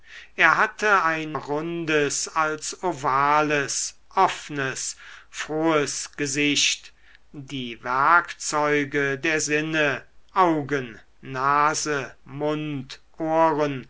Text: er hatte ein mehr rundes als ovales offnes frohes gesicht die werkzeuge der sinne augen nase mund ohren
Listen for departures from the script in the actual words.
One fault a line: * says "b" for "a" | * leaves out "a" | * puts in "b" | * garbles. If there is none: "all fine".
* leaves out "mehr"